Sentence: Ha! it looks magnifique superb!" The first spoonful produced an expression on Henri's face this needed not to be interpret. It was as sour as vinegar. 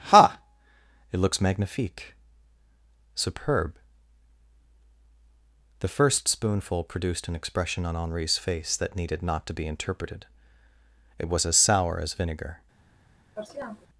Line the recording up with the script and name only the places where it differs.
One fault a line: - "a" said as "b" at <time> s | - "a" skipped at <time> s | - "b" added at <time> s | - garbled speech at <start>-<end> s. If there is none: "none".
- "this" said as "that" at 8.8 s
- "interpret" said as "interpreted" at 9.7 s